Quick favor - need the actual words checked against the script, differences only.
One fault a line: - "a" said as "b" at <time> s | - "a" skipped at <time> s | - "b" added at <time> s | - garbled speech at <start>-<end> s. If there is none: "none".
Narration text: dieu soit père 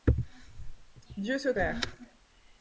none